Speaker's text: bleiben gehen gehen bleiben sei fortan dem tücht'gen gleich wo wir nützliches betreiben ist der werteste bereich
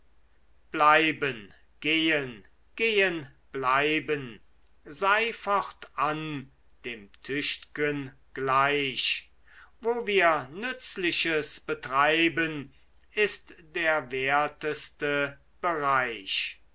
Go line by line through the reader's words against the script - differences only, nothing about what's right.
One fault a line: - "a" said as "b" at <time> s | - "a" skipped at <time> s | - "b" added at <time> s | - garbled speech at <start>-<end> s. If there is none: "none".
none